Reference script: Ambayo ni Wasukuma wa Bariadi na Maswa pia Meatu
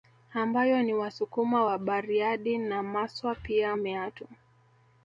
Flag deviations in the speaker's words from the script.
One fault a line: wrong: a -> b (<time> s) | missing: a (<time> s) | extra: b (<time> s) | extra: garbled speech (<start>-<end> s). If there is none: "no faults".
no faults